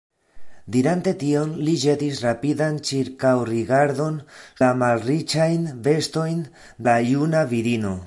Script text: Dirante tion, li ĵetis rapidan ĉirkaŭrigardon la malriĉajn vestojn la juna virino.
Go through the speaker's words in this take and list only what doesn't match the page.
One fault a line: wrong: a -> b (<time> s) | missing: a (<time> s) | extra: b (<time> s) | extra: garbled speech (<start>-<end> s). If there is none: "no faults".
no faults